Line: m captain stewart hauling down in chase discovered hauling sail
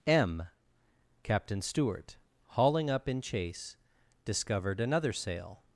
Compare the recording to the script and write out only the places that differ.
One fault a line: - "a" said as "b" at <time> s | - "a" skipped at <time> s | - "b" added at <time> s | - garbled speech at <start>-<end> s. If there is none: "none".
- "down" said as "up" at 2.9 s
- "hauling" said as "another" at 4.8 s